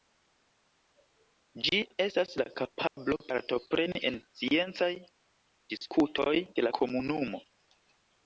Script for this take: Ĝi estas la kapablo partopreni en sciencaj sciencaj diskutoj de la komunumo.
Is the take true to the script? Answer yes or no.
no